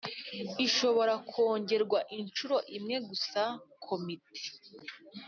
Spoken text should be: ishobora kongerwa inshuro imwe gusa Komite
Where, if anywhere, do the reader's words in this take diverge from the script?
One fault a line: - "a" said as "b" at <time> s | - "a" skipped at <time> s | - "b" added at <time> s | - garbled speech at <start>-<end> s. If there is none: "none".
none